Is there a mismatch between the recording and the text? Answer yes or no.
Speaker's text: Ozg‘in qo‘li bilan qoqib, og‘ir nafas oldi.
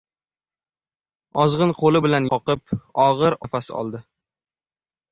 no